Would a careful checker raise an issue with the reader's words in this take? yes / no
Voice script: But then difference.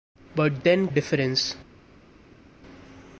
no